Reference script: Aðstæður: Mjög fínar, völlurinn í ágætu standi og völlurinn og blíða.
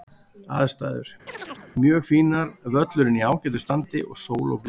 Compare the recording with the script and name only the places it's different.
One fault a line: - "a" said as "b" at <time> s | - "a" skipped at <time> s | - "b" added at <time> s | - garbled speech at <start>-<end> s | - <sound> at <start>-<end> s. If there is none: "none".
- chirp at 1.3-1.7 s
- "völlurinn" said as "sól" at 4.3 s